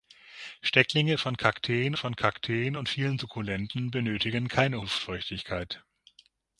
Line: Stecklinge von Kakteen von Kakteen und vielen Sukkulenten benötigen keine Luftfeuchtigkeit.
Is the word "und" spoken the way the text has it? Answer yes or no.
yes